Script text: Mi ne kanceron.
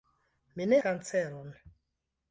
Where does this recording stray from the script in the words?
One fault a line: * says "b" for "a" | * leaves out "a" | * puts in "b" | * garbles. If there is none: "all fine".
all fine